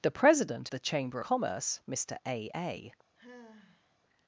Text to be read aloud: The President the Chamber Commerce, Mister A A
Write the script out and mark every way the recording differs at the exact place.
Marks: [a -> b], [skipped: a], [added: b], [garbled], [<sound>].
The President the Chamber Commerce, Mister A A [sigh]